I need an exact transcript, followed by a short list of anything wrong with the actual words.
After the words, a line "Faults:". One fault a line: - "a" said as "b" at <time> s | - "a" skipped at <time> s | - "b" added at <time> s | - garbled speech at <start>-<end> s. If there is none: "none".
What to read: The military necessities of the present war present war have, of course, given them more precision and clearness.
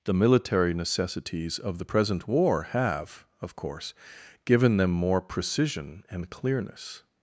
The military necessities of the present war have, of course, given them more precision and clearness.
Faults:
- "present war" skipped at 2.6 s